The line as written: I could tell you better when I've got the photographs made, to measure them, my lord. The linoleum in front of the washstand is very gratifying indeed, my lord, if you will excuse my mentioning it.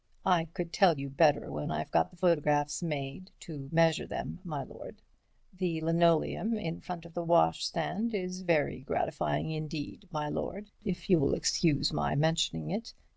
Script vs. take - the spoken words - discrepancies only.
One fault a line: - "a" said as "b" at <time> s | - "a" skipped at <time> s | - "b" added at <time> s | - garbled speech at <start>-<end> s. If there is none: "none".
none